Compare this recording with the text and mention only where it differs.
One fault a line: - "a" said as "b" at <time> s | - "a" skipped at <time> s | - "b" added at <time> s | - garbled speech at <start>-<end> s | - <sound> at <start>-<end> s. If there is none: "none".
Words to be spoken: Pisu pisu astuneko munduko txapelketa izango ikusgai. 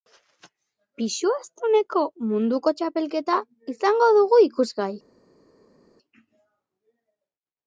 - "pisu" skipped at 1.3 s
- "dugu" added at 4.2 s